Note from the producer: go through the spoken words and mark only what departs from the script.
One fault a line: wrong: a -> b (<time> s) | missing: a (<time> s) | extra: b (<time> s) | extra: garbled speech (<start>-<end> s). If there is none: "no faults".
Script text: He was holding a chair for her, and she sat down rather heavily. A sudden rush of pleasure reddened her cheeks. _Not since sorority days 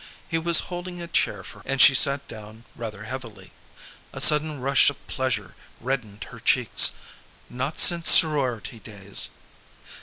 missing: her (1.6 s)